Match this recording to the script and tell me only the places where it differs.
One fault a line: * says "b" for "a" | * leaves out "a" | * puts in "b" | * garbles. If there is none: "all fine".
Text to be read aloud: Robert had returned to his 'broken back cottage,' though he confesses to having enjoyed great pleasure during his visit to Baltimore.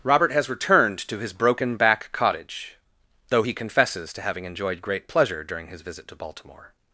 * says "has" for "had"